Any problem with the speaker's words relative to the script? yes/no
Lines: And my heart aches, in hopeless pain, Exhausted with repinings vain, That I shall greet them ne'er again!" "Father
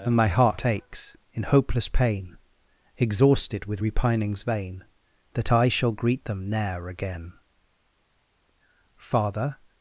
no